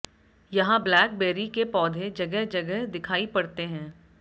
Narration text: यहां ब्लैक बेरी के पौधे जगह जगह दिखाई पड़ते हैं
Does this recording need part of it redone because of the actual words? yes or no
no